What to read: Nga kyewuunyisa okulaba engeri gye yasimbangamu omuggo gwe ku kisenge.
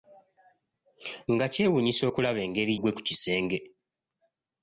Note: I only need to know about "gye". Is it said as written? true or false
false